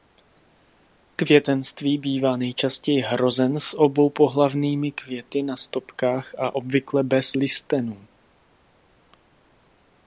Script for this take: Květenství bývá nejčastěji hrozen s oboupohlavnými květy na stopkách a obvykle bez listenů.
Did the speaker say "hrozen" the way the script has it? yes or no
yes